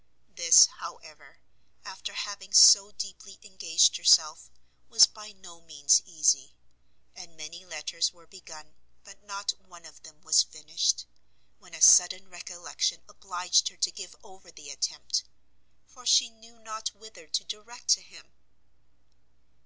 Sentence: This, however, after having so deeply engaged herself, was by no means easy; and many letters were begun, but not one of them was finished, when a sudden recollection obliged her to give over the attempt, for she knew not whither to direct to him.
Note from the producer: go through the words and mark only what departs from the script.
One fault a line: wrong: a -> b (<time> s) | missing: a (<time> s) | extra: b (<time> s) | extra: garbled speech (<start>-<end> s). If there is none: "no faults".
no faults